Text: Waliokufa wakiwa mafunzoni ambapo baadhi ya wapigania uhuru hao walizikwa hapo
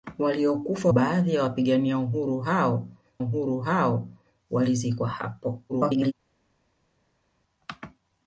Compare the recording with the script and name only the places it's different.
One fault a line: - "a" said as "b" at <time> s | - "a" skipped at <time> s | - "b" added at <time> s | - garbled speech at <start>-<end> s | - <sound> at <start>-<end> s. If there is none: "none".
- "wakiwa mafunzoni ambapo" skipped at 0.9 s
- "uhuru hao" added at 3.2 s
- garbled speech at 5.7-6.1 s